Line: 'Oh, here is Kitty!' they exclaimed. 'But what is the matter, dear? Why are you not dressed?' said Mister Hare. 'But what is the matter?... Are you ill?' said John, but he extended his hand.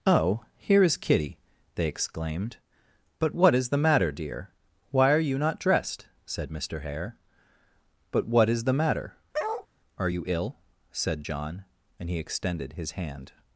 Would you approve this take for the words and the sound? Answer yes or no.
no